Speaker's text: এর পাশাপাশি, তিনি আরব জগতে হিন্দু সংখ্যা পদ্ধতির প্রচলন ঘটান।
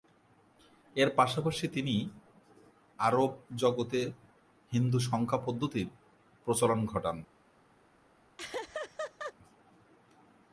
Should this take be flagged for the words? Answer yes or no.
no